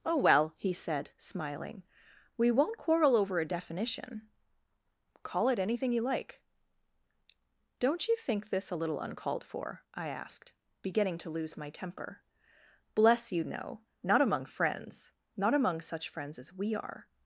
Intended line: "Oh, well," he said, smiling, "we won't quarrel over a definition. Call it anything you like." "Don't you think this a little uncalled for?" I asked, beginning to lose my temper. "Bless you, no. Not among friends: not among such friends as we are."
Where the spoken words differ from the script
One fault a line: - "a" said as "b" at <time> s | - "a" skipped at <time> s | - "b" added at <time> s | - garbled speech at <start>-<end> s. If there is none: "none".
none